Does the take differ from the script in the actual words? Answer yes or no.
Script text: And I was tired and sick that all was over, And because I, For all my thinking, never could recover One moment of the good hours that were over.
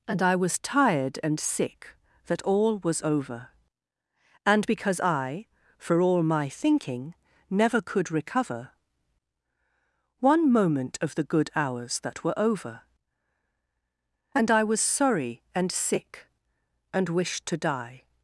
yes